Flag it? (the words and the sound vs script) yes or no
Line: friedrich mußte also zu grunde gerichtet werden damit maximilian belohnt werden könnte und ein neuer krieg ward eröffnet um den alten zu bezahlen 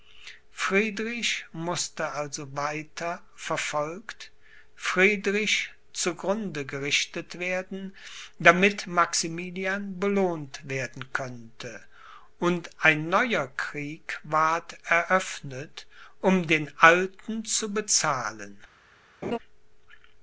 yes